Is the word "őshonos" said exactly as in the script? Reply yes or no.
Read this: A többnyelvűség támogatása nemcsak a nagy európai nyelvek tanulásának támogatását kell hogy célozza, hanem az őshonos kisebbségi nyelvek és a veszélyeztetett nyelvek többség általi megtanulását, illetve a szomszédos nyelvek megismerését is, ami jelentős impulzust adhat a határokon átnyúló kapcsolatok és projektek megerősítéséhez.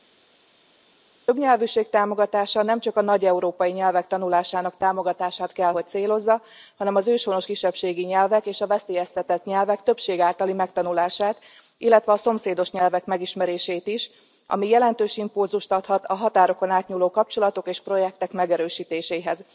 yes